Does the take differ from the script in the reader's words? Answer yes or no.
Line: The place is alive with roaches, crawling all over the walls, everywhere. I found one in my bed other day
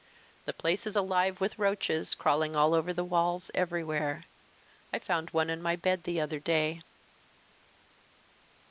yes